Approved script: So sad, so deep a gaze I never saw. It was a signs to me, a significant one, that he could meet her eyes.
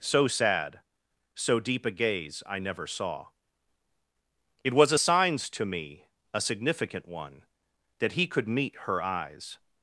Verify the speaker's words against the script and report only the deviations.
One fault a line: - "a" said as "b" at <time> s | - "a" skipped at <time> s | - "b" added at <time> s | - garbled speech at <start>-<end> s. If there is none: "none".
none